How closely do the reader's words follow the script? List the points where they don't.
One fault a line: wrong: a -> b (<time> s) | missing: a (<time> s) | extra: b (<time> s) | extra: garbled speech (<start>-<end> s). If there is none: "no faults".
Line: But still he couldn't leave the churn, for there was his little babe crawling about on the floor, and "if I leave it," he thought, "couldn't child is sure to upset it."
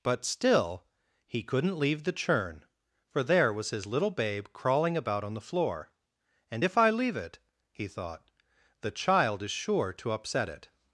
wrong: couldn't -> the (8.8 s)